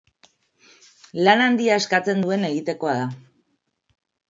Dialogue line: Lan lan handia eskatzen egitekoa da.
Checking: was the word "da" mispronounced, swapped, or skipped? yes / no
no